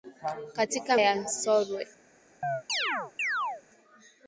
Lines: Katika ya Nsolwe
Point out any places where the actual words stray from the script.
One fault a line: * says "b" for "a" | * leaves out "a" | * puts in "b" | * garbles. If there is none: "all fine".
all fine